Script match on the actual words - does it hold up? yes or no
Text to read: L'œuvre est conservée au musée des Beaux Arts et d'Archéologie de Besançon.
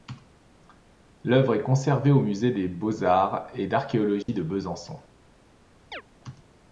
yes